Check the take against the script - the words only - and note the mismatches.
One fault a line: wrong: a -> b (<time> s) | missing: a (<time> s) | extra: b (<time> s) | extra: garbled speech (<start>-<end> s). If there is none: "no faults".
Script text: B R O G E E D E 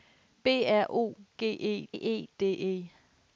no faults